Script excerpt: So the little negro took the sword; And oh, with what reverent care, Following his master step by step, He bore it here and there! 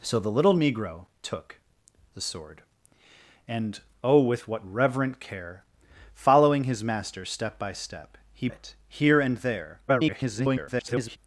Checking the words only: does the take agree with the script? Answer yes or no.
no